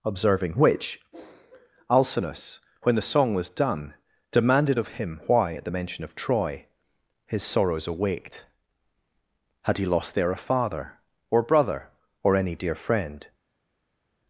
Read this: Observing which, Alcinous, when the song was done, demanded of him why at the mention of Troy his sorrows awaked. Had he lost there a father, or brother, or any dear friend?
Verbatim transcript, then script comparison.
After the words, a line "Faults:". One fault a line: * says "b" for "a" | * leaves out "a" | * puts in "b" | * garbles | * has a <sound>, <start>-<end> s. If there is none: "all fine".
Observing which, Alcinous, when the song was done, demanded of him why at the mention of Troy his sorrows awaked. Had he lost there a father, or brother, or any dear friend?
Faults:
all fine